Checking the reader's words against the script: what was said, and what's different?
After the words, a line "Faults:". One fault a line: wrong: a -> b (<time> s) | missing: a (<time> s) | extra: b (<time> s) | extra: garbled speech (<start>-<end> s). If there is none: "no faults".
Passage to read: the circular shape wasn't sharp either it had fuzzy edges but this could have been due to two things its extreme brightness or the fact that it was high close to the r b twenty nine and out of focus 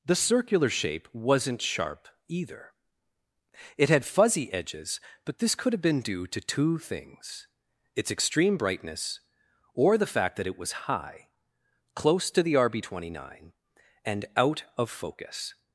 the circular shape wasn't sharp either it had fuzzy edges but this could have been due to two things its extreme brightness or the fact that it was high close to the r b twenty nine and out of focus
Faults:
no faults